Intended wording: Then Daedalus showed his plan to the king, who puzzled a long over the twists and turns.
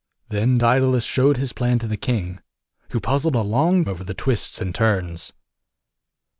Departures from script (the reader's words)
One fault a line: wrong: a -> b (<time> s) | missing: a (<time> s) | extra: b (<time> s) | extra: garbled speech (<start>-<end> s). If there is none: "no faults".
no faults